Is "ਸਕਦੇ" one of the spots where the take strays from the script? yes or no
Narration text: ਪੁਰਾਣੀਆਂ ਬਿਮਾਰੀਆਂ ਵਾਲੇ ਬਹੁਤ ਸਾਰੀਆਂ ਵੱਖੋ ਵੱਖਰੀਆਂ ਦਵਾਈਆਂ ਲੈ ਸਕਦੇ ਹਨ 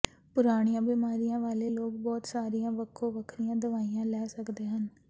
no